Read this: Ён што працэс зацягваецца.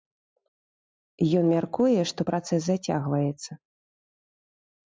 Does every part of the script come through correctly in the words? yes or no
no